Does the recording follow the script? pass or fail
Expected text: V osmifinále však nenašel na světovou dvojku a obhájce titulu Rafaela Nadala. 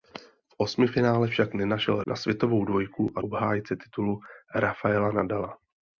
pass